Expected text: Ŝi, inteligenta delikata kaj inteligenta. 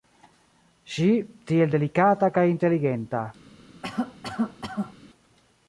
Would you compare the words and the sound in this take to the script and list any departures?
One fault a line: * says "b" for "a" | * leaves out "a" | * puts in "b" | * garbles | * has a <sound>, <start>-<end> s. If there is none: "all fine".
* says "tiel" for "inteligenta"
* has a cough, 3.8-4.9 s